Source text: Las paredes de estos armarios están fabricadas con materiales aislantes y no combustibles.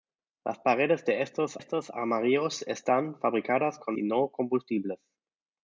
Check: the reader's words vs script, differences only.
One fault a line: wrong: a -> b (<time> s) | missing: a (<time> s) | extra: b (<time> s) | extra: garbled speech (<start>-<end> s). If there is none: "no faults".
extra: estos (1.6 s)
missing: materiales aislantes (4.0 s)